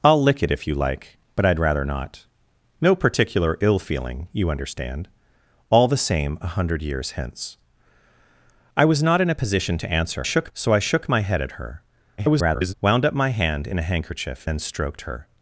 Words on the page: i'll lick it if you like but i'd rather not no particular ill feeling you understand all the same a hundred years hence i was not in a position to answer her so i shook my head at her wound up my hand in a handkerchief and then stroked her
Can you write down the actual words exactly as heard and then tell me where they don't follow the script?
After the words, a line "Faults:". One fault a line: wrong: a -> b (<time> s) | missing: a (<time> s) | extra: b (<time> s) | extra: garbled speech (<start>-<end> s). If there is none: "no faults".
i'll lick it if you like but i'd rather not no particular ill feeling you understand all the same a hundred years hence i was not in a position to answer shook so i shook my head at her [garbled] wound up my hand in a handkerchief then stroked her
Faults:
wrong: her -> shook (10.2 s)
extra: garbled speech (12.2-12.7 s)
missing: and (14.5 s)